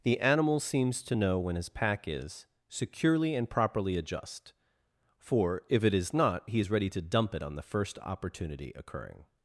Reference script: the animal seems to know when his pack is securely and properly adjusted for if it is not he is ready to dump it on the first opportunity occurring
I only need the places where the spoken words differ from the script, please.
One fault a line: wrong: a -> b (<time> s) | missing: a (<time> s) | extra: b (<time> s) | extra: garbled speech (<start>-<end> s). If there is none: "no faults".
wrong: adjusted -> adjust (4.0 s)